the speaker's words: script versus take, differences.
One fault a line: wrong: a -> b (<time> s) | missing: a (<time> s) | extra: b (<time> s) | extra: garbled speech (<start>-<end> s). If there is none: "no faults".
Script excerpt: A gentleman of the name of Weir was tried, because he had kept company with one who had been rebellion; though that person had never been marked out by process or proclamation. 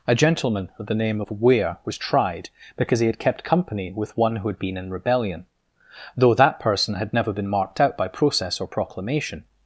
extra: in (4.8 s)